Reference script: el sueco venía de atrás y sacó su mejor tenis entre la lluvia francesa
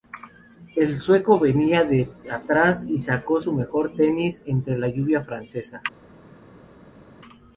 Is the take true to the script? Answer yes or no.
yes